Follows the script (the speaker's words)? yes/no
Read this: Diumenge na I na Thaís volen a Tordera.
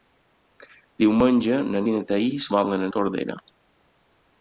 yes